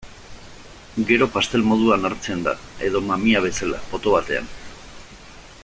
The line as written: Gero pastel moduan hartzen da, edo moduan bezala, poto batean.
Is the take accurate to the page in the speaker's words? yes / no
no